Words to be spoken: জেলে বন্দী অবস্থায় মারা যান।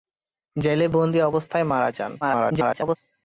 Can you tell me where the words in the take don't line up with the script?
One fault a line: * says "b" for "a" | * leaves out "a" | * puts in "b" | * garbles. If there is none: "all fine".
* garbles